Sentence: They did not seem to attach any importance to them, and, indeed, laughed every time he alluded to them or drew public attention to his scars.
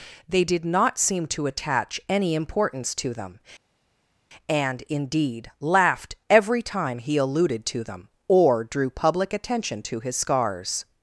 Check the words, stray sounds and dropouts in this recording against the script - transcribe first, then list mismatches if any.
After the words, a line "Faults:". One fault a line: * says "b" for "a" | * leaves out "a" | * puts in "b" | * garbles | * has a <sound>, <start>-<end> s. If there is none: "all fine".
They did not seem to attach any importance to them, and, indeed, laughed every time he alluded to them or drew public attention to his scars.
Faults:
all fine